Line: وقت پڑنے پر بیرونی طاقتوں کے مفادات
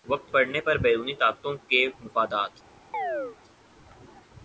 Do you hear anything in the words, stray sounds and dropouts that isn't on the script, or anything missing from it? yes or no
yes